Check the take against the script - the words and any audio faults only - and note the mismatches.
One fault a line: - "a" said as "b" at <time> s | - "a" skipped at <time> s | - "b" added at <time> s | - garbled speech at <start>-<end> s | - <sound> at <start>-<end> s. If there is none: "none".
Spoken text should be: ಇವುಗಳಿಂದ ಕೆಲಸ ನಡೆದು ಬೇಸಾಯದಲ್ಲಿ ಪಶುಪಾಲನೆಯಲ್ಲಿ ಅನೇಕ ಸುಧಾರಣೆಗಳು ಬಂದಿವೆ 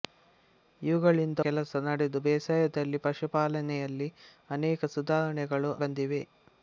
none